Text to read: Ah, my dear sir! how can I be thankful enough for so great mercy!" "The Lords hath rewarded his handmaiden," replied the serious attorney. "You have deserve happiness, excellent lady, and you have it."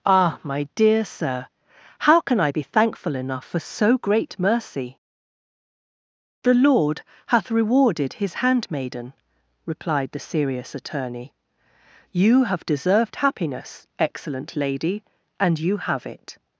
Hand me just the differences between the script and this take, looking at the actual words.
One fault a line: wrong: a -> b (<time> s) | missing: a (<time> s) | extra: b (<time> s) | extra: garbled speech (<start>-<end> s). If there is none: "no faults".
wrong: Lords -> Lord (6.5 s)
wrong: deserve -> deserved (12.7 s)